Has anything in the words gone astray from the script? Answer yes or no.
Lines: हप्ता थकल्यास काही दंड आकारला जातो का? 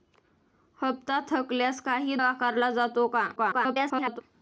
yes